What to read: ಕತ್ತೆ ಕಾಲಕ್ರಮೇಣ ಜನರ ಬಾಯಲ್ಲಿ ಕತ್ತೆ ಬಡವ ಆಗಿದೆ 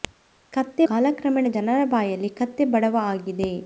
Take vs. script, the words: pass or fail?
pass